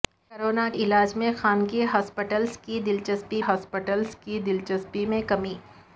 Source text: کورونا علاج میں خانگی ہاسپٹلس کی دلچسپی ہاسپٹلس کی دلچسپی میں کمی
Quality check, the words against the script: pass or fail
pass